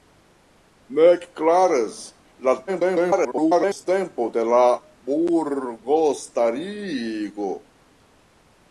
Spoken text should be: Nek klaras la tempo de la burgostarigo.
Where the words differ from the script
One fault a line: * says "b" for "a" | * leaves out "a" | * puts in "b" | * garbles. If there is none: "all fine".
* garbles